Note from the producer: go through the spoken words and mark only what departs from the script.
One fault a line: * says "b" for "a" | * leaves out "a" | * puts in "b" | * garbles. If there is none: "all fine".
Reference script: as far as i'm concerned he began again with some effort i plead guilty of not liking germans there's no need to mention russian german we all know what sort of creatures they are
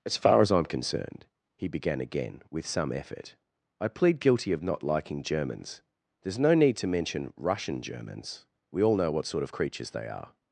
* says "germans" for "german"